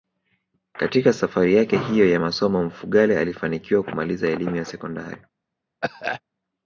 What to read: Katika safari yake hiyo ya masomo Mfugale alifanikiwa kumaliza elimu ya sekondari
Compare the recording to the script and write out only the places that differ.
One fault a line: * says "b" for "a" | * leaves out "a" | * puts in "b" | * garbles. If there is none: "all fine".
all fine